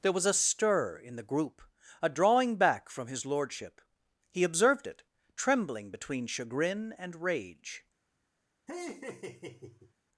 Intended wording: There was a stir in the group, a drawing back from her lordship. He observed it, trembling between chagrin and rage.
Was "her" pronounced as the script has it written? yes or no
no